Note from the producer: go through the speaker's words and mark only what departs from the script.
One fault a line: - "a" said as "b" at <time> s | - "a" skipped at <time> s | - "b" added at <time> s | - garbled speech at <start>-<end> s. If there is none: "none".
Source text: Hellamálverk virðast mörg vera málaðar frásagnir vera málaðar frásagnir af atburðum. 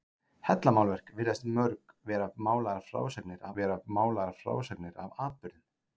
none